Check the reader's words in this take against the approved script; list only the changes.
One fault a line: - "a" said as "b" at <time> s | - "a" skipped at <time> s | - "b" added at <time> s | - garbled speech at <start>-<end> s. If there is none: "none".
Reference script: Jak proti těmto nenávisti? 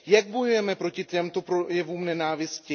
- "bojujeme" added at 0.3 s
- "projevům" added at 1.4 s